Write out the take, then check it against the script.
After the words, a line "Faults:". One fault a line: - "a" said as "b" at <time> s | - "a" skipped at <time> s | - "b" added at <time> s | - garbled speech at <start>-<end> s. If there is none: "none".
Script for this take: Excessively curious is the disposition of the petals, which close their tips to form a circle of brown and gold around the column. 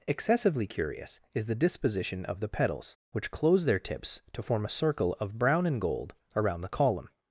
Excessively curious is the disposition of the petals, which close their tips to form a circle of brown and gold around the column.
Faults:
none